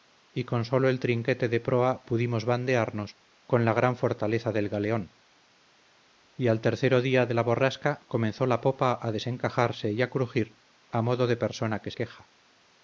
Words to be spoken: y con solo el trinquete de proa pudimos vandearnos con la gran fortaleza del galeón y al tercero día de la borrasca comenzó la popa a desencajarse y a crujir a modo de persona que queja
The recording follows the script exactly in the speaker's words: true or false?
true